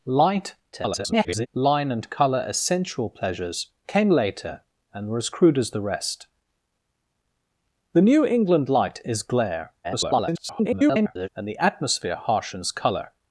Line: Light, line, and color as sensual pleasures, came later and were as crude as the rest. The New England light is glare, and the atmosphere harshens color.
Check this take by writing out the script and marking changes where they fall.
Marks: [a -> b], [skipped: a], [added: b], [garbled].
Light, [garbled] line, and color as sensual pleasures, came later and were as crude as the rest. The New England light is glare, [garbled] and the atmosphere harshens color.